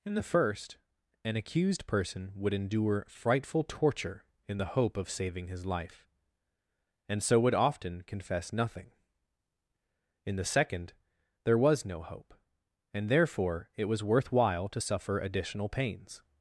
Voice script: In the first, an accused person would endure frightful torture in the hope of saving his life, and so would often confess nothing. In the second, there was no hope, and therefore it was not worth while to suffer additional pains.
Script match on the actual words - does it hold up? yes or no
no